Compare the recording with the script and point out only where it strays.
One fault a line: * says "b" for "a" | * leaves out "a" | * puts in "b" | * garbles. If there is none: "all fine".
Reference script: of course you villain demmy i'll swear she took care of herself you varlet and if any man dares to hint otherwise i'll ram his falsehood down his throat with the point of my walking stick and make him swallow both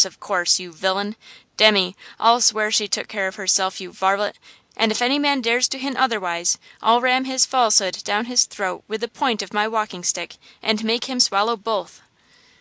all fine